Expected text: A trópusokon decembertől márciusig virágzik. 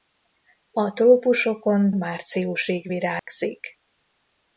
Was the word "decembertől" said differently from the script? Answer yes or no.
yes